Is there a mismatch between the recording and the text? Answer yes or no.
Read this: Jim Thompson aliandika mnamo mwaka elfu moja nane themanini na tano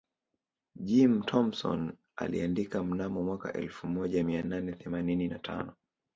yes